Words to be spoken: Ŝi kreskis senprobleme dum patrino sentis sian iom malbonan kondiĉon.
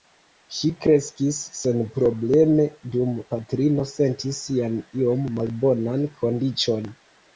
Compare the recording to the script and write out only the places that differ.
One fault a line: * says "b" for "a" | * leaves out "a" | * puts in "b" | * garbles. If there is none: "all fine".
all fine